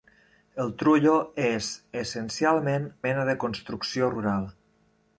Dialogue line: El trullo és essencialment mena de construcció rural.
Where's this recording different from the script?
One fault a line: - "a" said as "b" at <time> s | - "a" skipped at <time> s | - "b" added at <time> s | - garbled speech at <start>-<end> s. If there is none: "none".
none